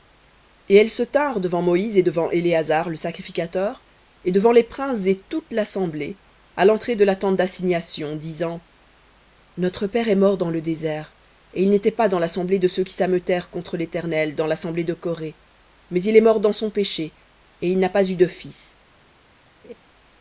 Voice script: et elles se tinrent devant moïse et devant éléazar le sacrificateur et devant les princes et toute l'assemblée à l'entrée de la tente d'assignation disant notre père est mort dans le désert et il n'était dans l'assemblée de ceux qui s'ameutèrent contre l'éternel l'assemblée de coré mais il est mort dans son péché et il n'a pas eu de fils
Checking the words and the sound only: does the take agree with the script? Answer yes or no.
no